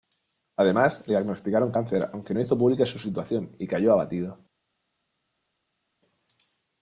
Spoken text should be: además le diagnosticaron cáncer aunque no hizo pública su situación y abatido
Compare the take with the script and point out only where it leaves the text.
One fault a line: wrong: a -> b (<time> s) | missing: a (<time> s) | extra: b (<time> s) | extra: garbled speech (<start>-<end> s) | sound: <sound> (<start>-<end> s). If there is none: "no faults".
extra: cayó (3.6 s)